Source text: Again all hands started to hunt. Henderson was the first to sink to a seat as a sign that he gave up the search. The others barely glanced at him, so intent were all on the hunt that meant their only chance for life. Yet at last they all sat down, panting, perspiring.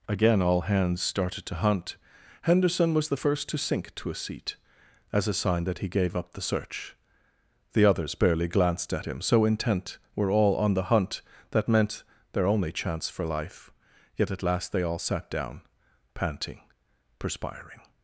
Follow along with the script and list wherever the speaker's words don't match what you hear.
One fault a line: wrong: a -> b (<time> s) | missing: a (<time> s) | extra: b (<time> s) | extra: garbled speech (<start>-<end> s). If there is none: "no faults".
no faults